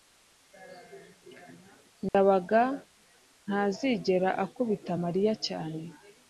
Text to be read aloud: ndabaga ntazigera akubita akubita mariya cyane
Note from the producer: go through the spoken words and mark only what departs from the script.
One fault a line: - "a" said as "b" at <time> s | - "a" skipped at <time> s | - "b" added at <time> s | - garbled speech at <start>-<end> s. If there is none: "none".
- "akubita" skipped at 4.9 s